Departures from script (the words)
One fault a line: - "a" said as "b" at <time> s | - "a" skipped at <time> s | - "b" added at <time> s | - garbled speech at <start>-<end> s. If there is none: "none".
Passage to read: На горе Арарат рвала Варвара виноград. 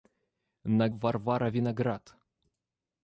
- "горе Арарат рвала" skipped at 0.9 s